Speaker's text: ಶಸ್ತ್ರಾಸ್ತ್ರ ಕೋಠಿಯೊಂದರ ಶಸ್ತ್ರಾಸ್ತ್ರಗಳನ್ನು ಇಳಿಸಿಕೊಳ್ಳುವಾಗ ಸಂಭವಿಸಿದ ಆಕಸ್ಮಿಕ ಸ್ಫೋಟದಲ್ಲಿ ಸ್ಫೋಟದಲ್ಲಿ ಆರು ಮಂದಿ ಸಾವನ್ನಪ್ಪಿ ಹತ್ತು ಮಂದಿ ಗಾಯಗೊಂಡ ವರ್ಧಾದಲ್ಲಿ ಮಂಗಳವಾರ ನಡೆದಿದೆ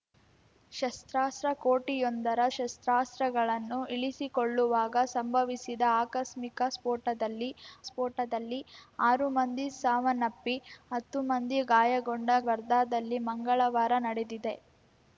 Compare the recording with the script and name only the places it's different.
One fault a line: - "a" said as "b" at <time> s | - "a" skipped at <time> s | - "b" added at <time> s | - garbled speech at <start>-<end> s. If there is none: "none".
none